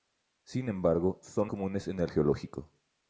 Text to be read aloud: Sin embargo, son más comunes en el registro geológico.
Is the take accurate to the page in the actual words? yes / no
no